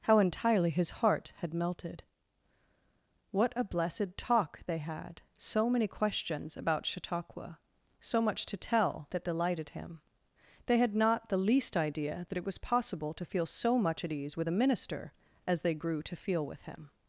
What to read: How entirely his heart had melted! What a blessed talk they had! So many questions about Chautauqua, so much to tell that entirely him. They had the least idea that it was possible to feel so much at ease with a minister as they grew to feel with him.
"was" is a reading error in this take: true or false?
false